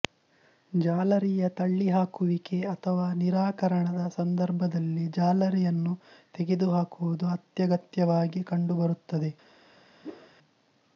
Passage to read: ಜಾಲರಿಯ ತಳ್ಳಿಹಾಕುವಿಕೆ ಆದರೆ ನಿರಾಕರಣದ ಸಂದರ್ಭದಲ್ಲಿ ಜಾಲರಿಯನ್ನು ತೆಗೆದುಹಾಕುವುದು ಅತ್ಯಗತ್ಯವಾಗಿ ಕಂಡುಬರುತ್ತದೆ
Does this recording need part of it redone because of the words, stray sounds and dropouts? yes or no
yes